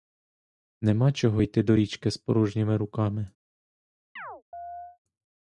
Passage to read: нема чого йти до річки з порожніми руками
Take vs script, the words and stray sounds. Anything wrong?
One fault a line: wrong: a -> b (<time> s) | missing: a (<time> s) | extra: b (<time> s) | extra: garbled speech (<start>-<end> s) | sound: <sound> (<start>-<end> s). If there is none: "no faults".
sound: chirp (4.2-5.0 s)